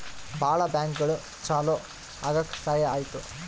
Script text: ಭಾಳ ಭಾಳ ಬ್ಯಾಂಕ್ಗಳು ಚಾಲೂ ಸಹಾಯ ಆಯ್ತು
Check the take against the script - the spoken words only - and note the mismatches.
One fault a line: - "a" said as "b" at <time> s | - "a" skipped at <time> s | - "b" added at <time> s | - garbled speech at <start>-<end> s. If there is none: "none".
- "ಭಾಳ" skipped at 0.6 s
- "ಆಗಕ್" added at 2.2 s